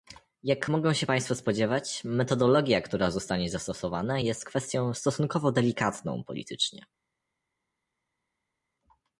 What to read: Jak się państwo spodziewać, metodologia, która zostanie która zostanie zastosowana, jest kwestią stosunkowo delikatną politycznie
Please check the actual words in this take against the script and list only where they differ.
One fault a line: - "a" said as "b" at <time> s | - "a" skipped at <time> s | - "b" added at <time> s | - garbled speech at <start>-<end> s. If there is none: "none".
- "mogą" added at 0.7 s
- "która zostanie" skipped at 3.5 s